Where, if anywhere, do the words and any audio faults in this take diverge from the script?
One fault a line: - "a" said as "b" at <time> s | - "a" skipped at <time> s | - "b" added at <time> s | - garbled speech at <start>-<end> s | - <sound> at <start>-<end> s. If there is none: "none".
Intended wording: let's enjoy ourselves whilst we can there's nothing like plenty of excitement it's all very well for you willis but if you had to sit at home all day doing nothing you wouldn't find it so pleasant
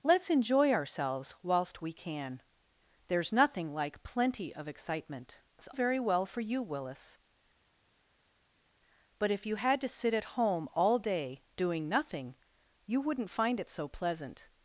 - "all" skipped at 5.7 s